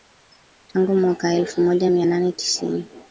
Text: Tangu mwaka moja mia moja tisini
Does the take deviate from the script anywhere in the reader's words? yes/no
yes